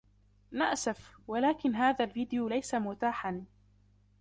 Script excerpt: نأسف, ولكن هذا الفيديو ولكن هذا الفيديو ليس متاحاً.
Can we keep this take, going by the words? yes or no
no